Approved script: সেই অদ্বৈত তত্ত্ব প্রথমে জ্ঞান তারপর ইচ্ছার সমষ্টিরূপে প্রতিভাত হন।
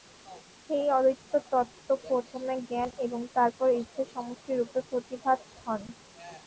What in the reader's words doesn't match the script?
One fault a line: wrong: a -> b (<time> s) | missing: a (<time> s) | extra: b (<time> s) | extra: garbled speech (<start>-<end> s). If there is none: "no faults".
extra: এবং (3.0 s)